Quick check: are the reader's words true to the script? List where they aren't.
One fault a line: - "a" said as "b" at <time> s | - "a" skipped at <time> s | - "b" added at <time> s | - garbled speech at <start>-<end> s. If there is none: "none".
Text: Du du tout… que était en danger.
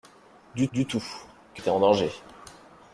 none